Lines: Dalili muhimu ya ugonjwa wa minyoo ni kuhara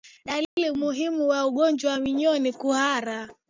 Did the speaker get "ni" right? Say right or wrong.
right